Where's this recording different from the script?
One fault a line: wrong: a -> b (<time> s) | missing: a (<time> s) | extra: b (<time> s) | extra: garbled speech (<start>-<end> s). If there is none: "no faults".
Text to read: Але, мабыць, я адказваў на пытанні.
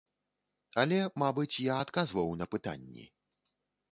no faults